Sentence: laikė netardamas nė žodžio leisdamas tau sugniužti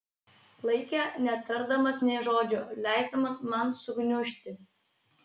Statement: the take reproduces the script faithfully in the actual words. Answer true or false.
false